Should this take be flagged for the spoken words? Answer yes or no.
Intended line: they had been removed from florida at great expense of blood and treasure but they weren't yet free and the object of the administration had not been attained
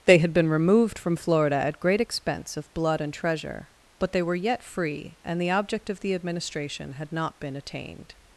yes